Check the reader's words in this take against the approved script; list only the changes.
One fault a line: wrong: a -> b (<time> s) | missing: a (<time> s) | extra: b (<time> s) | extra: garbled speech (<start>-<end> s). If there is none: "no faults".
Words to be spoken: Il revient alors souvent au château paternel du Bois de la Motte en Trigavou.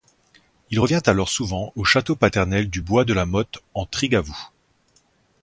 no faults